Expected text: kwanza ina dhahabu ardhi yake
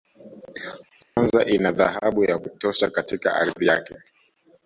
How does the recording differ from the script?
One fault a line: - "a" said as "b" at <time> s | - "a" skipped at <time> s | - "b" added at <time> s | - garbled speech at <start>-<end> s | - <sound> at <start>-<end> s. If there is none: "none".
- dropout at 1.0-1.2 s
- "ya kutosha katika" added at 2.2 s